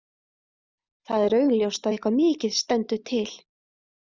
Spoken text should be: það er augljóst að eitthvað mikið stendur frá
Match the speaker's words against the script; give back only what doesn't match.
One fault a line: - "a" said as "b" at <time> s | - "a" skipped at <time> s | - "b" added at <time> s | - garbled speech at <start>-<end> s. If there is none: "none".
- "frá" said as "til" at 3.1 s